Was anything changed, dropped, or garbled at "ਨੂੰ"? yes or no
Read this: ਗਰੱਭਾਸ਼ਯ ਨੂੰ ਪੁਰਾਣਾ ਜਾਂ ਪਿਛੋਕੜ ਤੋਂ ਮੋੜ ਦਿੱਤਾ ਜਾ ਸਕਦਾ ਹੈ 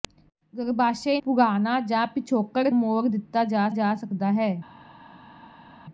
yes